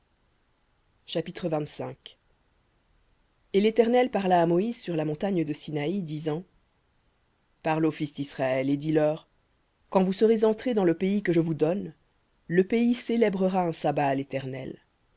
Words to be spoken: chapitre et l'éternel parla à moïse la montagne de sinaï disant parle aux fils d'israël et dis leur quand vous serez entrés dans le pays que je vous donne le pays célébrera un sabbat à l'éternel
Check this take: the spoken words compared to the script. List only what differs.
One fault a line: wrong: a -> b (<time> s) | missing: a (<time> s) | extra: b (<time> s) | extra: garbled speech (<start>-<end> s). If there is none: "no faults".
extra: sur (4.8 s)